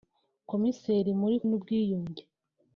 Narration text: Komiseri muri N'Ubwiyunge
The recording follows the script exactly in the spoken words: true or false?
true